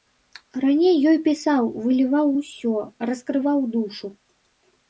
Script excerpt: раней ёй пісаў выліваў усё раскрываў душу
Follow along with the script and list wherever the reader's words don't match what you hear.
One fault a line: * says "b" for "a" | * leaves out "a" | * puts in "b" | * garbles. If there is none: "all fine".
all fine